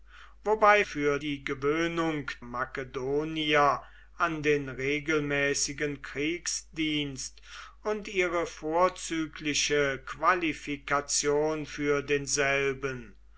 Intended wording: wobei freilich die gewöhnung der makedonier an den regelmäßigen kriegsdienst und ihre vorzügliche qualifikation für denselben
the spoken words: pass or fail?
fail